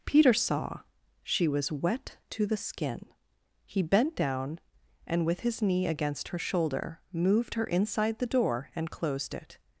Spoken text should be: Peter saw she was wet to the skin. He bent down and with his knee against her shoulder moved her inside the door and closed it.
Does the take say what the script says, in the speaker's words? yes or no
yes